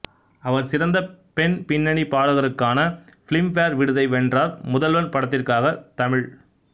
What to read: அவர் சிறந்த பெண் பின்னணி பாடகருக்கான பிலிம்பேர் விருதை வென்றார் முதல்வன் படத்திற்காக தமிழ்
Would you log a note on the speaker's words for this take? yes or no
no